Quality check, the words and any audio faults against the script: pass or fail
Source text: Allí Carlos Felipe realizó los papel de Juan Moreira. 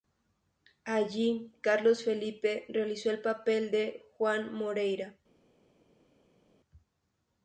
fail